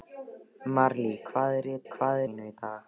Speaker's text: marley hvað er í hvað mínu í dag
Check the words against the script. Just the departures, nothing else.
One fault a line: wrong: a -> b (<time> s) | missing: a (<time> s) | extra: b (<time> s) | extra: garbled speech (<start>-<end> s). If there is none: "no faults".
no faults